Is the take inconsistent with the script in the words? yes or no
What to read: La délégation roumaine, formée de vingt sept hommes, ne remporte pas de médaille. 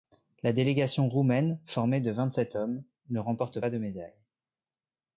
no